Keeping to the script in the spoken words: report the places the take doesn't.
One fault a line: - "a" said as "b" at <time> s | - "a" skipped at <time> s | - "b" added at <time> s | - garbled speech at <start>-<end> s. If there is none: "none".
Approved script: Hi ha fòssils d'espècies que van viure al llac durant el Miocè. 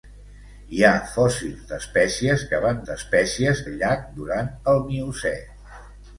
- "viure" said as "d'espècies" at 2.9 s